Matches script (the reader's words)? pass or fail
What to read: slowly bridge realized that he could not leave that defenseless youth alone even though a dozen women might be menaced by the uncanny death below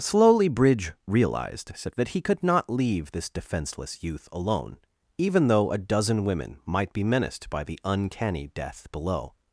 fail